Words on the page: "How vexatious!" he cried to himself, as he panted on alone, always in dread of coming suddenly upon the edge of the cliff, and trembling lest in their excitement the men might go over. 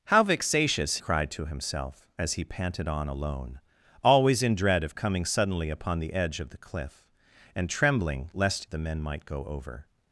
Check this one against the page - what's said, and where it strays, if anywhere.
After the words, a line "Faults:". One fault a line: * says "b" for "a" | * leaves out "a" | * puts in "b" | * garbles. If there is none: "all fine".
"How vexatious!" cried to himself, as he panted on alone, always in dread of coming suddenly upon the edge of the cliff, and trembling lest the men might go over.
Faults:
* leaves out "he"
* leaves out "in their excitement"